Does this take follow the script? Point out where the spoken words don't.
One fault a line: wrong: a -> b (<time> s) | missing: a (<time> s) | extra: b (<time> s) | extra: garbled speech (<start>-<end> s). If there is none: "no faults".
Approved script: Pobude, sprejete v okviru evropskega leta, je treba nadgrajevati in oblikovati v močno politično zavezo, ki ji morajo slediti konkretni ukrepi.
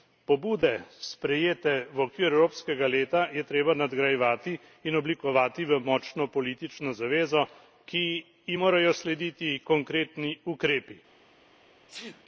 no faults